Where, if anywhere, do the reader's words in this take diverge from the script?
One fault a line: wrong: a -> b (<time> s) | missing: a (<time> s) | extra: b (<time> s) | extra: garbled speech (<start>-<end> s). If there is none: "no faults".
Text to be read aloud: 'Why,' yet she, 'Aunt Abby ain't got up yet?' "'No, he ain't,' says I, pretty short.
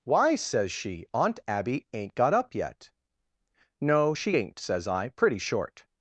wrong: yet -> says (0.3 s)
wrong: he -> she (4.1 s)